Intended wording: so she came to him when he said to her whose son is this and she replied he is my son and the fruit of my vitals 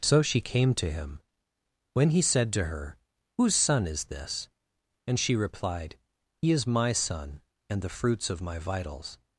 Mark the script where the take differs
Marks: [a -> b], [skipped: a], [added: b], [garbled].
so she came to him when he said to her whose son is this and she replied he is my son and the [fruit -> fruits] of my vitals